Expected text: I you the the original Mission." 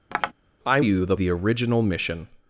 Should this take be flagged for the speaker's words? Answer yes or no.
no